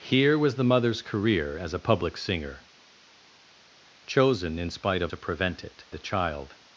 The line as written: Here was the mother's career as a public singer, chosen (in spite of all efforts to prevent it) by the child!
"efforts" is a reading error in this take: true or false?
true